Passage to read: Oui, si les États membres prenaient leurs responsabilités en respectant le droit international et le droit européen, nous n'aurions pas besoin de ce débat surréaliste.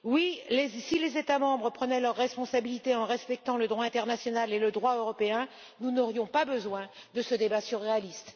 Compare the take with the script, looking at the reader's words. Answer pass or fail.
pass